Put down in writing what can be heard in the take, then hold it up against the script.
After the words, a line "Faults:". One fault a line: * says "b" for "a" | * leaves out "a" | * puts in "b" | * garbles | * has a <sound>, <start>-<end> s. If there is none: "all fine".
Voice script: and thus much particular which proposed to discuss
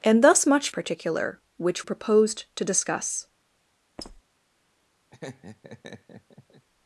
and thus much particular which proposed to discuss
Faults:
* has a squeak, 4.0-4.2 s
* has a laugh, 5.1-6.7 s